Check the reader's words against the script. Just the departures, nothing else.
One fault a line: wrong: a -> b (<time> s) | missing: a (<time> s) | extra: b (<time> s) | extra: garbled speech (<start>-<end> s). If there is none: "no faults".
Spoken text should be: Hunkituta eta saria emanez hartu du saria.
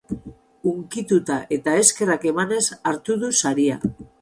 wrong: saria -> eskerrak (1.8 s)